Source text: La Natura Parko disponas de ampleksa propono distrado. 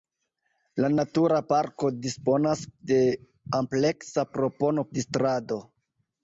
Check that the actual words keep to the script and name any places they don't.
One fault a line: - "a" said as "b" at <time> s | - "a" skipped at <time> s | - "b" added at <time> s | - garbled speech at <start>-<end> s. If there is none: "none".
none